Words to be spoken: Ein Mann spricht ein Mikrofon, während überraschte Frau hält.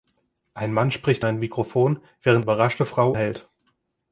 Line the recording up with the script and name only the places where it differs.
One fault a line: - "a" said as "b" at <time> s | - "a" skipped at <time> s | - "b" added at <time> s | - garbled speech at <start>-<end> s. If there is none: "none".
none